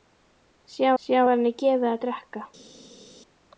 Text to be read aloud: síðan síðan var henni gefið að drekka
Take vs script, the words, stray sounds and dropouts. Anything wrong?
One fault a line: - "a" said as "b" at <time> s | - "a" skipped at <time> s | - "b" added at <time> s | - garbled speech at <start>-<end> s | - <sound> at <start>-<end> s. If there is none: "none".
none